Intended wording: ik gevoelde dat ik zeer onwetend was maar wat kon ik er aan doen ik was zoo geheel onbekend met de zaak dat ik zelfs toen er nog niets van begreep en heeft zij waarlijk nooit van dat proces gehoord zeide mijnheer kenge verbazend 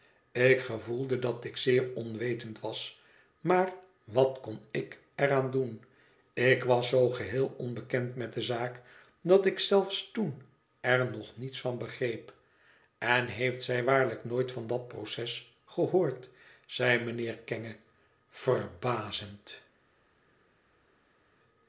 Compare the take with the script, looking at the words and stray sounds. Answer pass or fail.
pass